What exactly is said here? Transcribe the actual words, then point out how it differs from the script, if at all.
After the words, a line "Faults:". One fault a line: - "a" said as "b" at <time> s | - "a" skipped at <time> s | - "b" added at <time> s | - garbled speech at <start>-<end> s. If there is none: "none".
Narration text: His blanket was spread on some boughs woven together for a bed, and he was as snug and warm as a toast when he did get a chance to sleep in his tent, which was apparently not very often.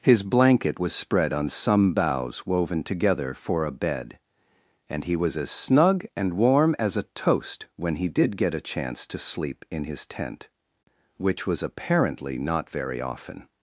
His blanket was spread on some boughs woven together for a bed, and he was as snug and warm as a toast when he did get a chance to sleep in his tent, which was apparently not very often.
Faults:
none